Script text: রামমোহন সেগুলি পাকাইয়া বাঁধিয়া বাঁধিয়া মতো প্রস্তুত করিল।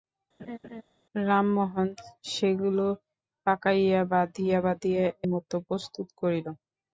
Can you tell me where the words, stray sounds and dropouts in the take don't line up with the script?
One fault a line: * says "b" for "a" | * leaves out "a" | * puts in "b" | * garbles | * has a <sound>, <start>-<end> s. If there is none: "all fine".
* has a laugh, 0.4-0.8 s